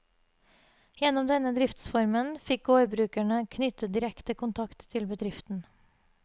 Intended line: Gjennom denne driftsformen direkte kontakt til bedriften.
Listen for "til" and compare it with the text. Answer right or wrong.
right